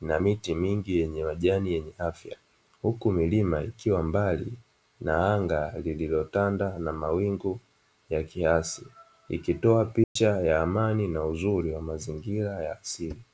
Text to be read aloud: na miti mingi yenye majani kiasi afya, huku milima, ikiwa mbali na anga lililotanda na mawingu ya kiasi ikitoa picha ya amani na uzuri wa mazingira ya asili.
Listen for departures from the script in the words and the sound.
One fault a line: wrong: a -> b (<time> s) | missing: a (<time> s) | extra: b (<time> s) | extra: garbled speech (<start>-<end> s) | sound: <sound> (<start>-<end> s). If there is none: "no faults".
wrong: kiasi -> yenye (1.7 s)
sound: dropout (10.0-10.2 s)